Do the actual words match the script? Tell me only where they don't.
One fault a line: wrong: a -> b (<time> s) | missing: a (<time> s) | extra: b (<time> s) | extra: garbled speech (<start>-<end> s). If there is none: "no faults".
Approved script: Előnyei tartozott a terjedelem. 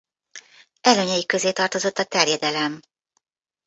extra: közé (1.2 s)